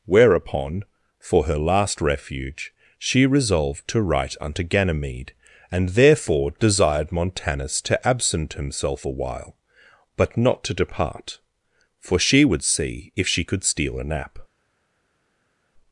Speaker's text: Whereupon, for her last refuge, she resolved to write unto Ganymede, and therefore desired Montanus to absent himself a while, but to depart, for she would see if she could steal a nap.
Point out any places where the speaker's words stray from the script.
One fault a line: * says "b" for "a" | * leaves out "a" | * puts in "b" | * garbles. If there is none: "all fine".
* puts in "not"